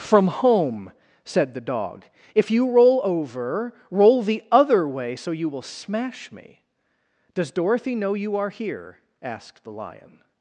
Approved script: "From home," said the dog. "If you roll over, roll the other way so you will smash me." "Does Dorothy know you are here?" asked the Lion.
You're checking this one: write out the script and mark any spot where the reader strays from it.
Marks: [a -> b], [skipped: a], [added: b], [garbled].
"From home," said the dog. "If you roll over, roll the other way so you will smash me." "Does Dorothy know you are here?" asked the Lion.